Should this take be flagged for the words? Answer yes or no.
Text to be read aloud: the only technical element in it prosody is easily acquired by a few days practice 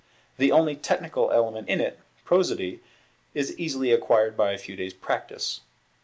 no